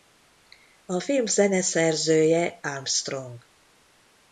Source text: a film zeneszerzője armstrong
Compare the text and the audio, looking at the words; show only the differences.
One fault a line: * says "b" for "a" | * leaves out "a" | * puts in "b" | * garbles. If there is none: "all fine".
all fine